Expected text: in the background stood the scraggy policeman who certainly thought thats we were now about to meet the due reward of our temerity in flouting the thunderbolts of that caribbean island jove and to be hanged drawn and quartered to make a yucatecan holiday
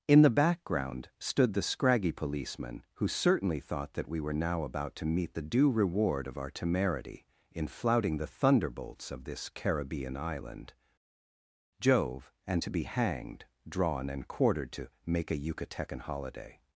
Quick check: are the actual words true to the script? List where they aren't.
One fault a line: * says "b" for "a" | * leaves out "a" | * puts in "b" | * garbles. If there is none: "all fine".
* says "that" for "thats"
* says "this" for "that"